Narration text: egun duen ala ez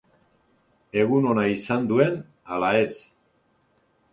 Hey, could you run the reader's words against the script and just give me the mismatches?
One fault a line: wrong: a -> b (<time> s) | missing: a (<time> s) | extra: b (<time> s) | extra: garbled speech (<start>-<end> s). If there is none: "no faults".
extra: ona izan (1.3 s)